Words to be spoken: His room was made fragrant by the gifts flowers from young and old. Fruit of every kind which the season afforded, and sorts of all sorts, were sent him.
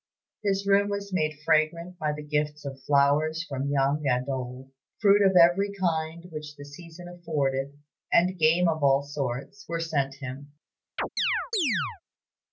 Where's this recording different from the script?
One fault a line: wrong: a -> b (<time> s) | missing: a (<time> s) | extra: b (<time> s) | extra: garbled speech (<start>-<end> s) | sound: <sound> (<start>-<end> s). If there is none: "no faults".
extra: of (2.6 s)
wrong: sorts -> game (8.4 s)
sound: chirp (11.0-12.0 s)